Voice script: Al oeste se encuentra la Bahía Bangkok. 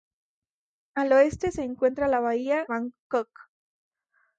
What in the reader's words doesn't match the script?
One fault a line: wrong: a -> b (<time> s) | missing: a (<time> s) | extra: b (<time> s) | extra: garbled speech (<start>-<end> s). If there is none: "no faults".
no faults